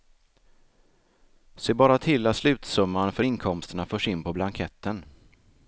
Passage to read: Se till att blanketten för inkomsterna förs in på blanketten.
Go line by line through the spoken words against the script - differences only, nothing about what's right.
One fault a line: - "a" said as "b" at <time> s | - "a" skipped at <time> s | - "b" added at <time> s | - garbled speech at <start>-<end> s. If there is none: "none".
- "bara" added at 1.7 s
- "blanketten" said as "slutsumman" at 2.4 s